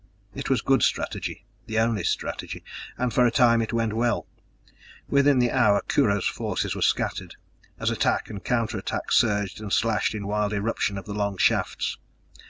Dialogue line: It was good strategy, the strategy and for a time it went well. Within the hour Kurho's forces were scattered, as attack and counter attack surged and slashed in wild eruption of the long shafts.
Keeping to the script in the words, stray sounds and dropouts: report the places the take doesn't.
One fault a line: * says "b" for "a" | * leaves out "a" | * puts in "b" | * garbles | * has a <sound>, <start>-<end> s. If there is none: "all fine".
* puts in "only"